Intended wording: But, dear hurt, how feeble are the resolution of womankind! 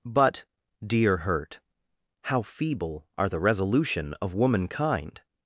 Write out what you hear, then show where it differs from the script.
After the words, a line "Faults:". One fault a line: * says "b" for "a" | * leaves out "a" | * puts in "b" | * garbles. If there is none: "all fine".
But, dear hurt, how feeble are the resolution of womankind!
Faults:
all fine